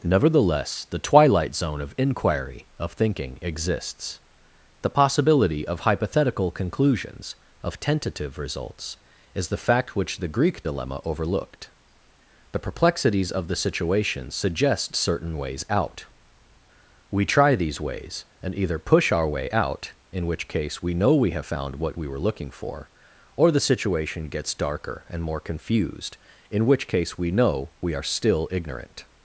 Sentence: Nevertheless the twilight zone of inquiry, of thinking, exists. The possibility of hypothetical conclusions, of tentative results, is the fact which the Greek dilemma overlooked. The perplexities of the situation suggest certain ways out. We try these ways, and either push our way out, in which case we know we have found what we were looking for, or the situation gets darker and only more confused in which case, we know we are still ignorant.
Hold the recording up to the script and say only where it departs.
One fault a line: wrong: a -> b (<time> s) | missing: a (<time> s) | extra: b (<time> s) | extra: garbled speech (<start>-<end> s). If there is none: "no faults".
missing: only (25.2 s)